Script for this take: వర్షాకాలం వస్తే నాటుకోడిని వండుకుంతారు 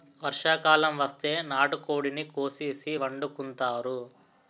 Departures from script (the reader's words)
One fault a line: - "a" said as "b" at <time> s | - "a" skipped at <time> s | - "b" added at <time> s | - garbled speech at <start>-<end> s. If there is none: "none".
- "కోసేసి" added at 2.3 s